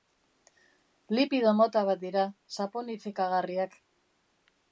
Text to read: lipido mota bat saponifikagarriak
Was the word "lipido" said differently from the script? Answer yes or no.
no